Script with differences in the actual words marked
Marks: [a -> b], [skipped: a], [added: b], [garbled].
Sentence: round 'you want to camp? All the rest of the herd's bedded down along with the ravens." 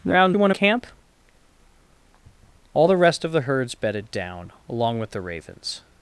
round 'you want to camp? All the rest of the herd's bedded down along with the ravens."